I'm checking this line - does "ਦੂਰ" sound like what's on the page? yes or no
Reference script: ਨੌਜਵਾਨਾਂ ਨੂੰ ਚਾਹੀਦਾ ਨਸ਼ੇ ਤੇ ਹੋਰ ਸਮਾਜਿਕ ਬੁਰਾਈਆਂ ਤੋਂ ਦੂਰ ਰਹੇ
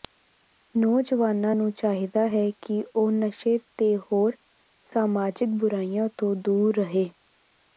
yes